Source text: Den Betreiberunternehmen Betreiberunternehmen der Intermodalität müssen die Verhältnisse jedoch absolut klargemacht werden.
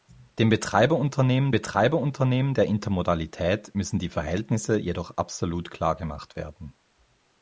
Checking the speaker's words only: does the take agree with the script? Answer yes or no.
yes